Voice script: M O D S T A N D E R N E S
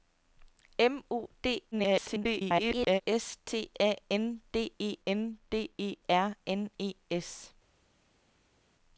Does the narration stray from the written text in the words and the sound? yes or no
yes